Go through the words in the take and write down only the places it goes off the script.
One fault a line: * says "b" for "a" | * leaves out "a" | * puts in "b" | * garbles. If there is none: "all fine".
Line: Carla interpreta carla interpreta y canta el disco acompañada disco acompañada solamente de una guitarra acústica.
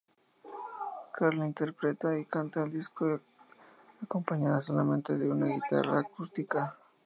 * leaves out "carla interpreta"
* leaves out "disco acompañada"